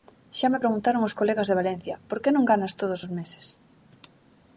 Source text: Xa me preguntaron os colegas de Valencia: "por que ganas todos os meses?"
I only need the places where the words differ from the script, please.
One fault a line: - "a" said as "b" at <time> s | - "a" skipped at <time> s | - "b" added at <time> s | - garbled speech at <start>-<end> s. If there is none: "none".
- "non" added at 2.3 s